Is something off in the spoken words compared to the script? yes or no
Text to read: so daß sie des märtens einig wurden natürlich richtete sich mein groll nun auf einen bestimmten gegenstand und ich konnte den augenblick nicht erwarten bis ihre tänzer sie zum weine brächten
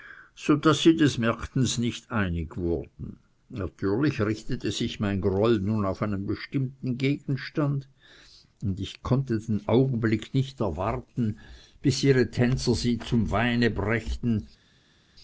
yes